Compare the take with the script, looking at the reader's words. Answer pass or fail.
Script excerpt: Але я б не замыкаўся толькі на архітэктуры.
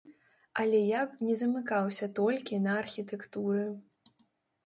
pass